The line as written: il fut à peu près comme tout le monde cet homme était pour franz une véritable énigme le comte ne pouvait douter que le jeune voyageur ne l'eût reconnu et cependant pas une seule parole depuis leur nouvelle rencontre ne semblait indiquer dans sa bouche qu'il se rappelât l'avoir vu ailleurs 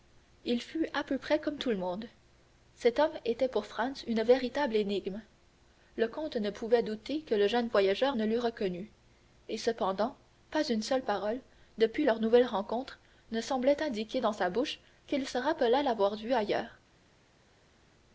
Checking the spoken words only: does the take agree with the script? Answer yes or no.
yes